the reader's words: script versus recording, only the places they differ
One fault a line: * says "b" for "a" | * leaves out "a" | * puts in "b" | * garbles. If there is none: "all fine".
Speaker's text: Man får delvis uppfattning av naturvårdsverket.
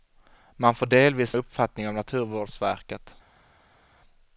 all fine